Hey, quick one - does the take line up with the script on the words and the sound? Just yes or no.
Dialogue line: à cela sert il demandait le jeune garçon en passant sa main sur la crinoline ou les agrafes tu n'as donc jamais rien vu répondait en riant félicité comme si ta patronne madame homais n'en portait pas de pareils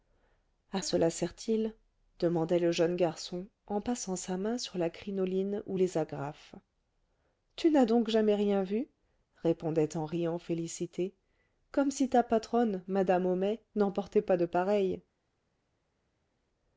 yes